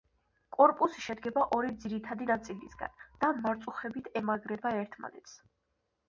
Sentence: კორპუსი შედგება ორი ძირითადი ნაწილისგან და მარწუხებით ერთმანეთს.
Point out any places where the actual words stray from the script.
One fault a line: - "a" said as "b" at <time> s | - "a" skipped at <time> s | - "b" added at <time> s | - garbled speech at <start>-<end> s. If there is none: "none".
- "ემაგრება" added at 4.2 s